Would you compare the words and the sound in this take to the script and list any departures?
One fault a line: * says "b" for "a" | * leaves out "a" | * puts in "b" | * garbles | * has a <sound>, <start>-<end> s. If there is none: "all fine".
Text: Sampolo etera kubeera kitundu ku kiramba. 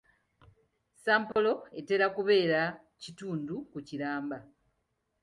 * has a dropout, 1.3-1.4 s